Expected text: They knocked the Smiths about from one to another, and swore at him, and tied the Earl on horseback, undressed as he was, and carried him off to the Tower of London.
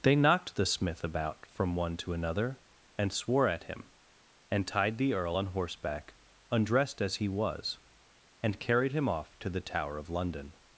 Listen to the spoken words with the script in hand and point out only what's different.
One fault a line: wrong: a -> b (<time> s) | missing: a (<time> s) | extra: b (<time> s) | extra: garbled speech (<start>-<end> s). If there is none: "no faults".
wrong: Smiths -> Smith (0.7 s)